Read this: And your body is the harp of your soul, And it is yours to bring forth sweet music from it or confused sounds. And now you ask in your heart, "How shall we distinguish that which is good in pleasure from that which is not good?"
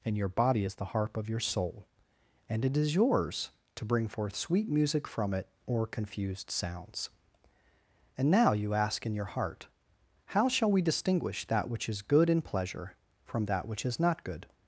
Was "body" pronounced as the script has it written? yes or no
yes